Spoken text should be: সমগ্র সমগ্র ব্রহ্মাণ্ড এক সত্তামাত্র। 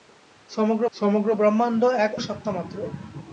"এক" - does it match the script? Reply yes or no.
yes